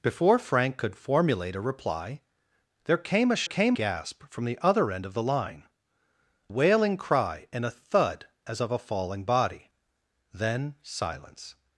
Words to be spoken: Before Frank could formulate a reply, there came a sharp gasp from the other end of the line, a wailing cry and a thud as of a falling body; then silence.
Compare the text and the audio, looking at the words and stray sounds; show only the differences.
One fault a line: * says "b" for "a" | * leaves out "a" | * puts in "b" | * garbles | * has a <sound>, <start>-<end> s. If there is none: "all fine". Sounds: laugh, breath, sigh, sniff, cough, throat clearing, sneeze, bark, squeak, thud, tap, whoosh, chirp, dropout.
* says "came" for "sharp"
* leaves out "a"